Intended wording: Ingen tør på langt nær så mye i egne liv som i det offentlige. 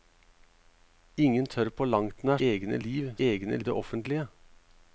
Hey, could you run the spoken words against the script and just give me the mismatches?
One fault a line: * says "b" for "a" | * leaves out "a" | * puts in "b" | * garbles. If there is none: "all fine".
* leaves out "så mye i"
* says "egne" for "som"